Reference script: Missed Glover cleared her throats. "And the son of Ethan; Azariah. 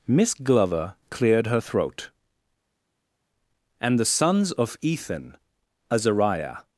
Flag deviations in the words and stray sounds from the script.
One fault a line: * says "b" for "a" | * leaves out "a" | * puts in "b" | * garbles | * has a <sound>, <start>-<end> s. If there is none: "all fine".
* says "Miss" for "Missed"
* says "throat" for "throats"
* says "sons" for "son"